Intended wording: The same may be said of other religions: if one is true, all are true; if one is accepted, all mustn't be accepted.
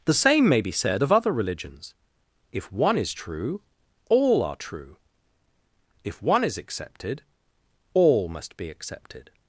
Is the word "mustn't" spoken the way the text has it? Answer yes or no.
no